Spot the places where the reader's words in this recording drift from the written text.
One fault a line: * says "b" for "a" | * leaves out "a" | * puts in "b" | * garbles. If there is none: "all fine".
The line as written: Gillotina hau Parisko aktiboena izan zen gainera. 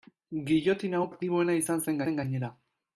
* leaves out "Parisko"
* puts in "zen"